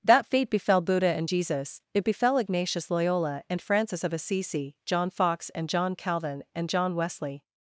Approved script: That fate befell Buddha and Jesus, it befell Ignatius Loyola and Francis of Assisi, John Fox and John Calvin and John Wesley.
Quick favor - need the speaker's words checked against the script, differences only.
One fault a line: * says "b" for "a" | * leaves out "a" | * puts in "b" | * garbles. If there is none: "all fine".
all fine